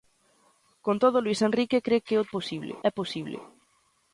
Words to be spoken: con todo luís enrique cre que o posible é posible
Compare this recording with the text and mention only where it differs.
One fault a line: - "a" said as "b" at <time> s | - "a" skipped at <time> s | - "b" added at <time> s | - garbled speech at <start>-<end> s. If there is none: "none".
none